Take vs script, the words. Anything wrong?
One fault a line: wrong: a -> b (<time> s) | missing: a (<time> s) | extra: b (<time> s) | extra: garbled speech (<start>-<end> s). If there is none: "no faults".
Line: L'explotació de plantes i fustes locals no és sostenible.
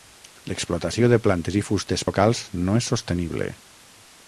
no faults